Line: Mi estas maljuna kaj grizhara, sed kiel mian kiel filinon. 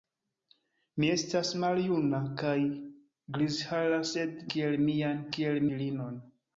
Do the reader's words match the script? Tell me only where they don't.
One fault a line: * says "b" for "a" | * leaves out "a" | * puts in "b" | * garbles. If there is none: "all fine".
all fine